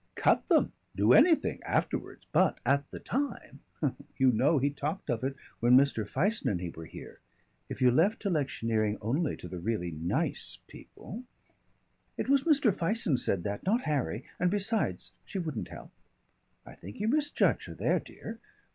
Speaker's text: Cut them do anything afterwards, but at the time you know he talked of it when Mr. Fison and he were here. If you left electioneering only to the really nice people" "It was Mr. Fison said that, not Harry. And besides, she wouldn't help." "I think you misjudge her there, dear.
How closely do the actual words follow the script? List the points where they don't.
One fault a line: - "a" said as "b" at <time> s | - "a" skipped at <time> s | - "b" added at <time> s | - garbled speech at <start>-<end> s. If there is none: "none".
none